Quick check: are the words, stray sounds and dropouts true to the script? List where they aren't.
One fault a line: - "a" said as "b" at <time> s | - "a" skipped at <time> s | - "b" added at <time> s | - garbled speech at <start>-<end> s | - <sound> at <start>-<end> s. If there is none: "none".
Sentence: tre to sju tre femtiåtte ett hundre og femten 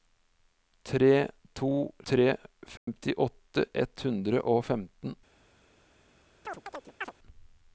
- "sju" skipped at 1.7 s
- dropout at 2.8-2.9 s
- chirp at 6.4-7.1 s